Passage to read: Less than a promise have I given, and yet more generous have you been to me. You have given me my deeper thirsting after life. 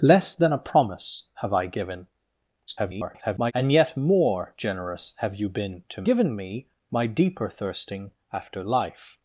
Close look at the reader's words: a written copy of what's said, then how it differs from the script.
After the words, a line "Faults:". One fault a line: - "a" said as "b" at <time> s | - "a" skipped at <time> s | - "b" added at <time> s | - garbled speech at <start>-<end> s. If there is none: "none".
Less than a promise have I given, [garbled] and yet more generous have you been to given me my deeper thirsting after life.
Faults:
- garbled speech at 2.7-3.5 s
- "me You have" skipped at 6.0 s